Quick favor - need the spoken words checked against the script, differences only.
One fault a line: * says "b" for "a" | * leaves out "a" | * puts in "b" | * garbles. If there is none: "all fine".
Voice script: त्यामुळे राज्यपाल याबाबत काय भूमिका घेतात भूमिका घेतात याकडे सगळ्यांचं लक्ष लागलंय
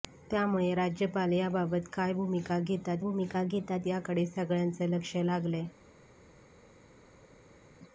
all fine